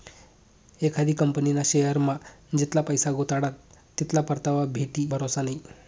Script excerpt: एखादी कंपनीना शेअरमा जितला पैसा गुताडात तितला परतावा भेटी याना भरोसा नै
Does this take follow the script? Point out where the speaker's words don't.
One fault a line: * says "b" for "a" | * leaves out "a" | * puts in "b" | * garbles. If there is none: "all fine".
* leaves out "याना"